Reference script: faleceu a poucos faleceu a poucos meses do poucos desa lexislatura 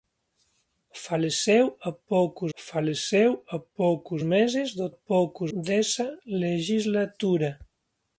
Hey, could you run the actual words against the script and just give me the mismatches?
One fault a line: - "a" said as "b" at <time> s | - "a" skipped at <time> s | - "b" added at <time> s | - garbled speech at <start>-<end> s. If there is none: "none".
none